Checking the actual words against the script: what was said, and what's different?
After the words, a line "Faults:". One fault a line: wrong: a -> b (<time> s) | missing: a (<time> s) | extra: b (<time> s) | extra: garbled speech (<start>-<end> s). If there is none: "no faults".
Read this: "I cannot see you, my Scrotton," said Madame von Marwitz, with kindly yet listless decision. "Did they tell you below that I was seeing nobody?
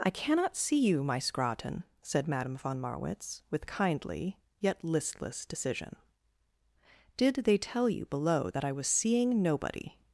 "I cannot see you, my Scrotton," said Madame von Marwitz, with kindly yet listless decision. "Did they tell you below that I was seeing nobody?
Faults:
no faults